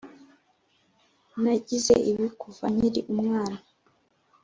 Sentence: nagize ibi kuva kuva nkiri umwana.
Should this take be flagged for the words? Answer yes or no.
yes